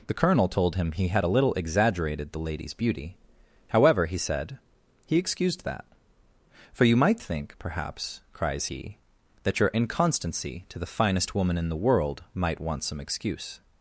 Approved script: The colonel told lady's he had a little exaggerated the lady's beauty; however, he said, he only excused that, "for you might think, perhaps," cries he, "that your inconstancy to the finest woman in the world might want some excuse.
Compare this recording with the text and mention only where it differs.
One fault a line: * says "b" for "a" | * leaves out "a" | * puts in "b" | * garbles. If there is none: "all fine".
* says "him" for "lady's"
* leaves out "only"